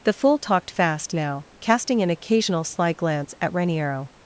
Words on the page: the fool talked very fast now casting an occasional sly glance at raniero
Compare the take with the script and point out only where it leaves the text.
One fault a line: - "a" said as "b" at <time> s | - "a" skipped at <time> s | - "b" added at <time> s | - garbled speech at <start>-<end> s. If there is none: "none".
- "very" skipped at 0.7 s